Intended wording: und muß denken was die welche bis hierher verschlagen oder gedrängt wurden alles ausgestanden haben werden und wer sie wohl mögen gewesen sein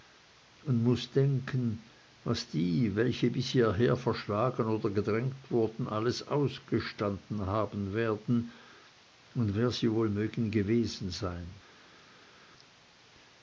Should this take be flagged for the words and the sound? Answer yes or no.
no